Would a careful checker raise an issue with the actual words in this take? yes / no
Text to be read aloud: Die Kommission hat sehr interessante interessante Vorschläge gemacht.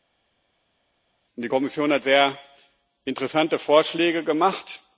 yes